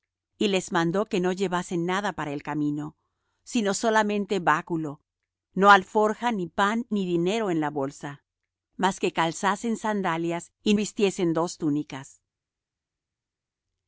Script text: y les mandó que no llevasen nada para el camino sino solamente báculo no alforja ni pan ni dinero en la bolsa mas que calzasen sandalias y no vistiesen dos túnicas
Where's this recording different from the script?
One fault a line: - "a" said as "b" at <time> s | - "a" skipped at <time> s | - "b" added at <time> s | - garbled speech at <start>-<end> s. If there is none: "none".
- "no" skipped at 10.7 s